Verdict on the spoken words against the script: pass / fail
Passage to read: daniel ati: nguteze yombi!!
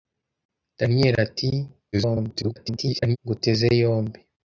fail